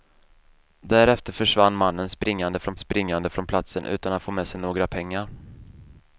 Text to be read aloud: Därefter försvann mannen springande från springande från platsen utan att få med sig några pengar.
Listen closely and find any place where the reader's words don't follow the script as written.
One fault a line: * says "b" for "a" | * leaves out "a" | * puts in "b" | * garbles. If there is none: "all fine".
all fine